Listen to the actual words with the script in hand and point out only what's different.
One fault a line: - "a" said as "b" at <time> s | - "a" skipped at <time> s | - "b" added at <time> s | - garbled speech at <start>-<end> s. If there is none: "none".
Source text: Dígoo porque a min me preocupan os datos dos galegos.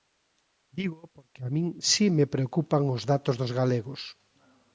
- "si" added at 1.9 s